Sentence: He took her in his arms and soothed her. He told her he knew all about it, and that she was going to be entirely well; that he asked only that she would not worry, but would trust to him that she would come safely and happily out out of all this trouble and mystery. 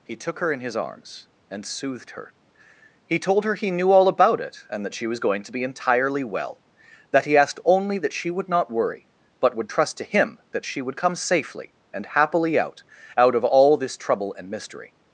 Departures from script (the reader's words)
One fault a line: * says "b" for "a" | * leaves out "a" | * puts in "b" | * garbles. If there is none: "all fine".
all fine